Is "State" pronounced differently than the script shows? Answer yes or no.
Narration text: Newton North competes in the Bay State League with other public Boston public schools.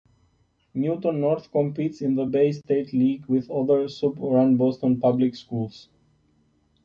no